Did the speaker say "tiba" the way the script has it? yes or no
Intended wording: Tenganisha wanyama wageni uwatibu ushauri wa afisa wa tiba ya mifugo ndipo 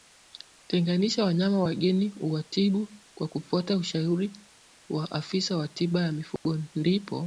yes